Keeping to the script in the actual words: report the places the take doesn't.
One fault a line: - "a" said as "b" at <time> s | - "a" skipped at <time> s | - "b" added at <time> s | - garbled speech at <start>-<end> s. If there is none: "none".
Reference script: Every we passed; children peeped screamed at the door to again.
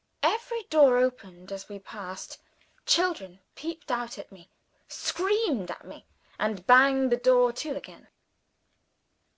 - "door opened as" added at 0.6 s
- "out at me" added at 3.9 s
- "me and banged" added at 5.8 s